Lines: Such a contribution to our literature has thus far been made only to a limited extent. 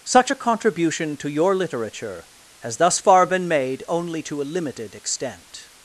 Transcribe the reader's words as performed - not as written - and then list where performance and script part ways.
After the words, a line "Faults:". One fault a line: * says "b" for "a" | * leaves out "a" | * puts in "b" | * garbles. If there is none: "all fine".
Such a contribution to your literature has thus far been made only to a limited extent.
Faults:
* says "your" for "our"